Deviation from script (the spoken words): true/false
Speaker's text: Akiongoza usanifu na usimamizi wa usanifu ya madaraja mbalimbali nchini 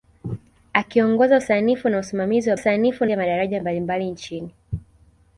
false